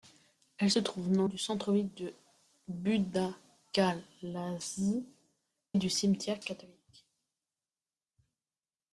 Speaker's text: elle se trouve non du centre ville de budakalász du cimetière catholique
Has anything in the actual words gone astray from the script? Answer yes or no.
no